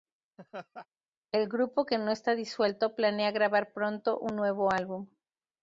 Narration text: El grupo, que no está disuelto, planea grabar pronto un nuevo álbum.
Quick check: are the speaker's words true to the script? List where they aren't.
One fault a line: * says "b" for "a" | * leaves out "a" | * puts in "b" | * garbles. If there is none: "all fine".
all fine